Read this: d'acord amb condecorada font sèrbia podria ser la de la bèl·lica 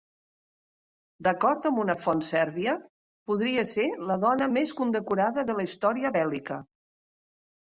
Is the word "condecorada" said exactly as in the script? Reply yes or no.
no